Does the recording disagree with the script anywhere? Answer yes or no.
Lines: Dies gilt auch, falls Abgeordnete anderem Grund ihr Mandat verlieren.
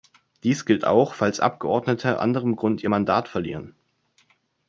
no